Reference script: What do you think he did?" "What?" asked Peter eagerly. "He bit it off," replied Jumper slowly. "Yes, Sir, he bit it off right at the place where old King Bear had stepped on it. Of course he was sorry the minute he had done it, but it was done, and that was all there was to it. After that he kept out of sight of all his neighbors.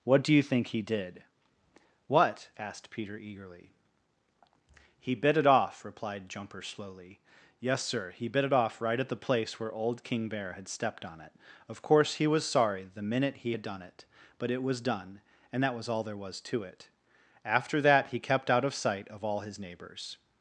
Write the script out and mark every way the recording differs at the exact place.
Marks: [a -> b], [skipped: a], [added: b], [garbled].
What do you think he did?" "What?" asked Peter eagerly. "He bit it off," replied Jumper slowly. "Yes, Sir, he bit it off right at the place where old King Bear had stepped on it. Of course he was sorry the minute he had done it, but it was done, and that was all there was to it. After that he kept out of sight of all his neighbors.